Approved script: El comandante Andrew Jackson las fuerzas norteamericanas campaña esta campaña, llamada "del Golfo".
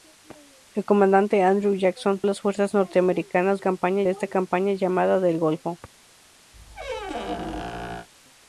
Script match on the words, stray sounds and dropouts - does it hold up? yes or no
no